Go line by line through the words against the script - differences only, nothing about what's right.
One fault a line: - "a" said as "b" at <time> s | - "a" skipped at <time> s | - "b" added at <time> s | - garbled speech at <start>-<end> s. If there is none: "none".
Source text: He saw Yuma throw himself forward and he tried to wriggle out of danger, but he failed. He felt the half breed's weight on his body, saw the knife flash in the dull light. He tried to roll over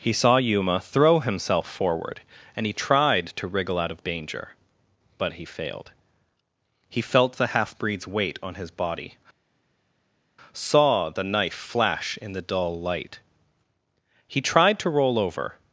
none